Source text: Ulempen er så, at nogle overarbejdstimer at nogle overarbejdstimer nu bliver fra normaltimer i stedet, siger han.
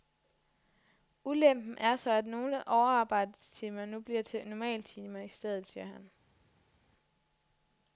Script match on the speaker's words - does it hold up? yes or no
no